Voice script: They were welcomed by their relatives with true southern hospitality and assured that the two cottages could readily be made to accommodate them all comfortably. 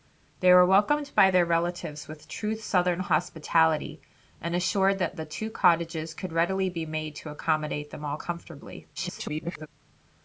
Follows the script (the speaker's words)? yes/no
no